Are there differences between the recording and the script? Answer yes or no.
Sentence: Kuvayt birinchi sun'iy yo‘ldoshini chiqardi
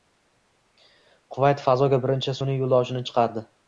yes